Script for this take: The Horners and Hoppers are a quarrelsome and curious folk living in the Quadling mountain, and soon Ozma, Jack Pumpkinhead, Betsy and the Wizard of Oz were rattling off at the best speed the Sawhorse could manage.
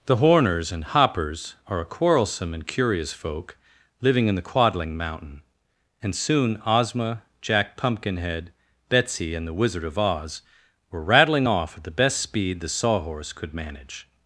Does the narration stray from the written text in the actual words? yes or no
no